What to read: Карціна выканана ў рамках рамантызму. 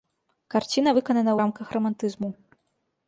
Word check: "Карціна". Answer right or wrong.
right